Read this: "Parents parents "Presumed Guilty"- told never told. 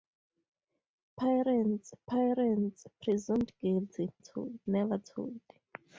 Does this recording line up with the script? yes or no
yes